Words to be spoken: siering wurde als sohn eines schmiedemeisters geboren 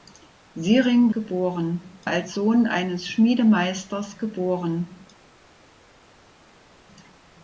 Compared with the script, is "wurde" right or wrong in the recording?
wrong